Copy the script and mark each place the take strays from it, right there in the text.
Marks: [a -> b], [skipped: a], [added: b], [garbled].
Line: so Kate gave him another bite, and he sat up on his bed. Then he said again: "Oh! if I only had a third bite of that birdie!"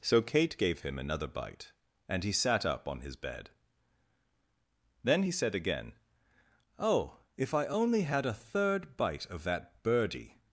so Kate gave him another bite, and he sat up on his bed. Then he said again: "Oh! if I only had a third bite of that birdie!"